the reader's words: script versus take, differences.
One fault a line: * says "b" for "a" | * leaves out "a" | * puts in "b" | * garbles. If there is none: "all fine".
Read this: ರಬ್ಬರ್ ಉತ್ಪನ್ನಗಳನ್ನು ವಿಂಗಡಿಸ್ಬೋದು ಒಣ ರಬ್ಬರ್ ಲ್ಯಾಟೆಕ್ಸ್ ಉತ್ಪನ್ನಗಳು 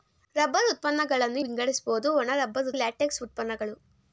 all fine